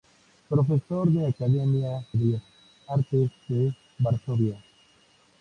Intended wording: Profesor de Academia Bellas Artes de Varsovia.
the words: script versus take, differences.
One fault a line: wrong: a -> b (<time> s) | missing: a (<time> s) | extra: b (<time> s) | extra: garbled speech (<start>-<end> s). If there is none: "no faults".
no faults